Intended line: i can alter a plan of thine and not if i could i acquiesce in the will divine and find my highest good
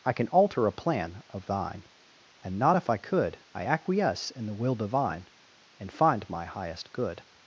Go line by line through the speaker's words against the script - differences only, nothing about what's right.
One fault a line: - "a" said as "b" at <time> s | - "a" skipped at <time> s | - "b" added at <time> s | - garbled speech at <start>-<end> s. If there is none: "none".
none